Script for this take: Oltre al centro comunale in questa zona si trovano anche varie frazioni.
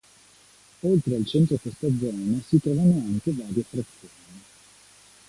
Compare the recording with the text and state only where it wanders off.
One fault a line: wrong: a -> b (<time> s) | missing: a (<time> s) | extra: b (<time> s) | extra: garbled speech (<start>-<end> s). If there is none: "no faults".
missing: comunale in (1.6 s)